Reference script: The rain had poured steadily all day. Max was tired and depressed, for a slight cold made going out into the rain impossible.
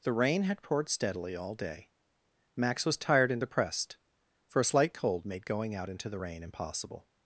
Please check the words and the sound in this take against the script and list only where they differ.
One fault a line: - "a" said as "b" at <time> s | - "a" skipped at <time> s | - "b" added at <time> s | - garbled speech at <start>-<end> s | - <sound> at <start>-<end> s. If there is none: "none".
none